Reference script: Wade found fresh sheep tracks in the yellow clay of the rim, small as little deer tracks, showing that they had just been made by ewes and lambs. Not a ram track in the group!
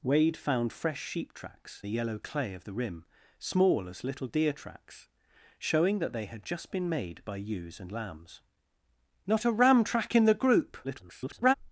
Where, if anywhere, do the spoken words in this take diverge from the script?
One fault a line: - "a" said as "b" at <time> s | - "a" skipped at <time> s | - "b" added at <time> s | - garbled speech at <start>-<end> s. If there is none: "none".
- "in" skipped at 1.8 s
- garbled speech at 10.8-11.5 s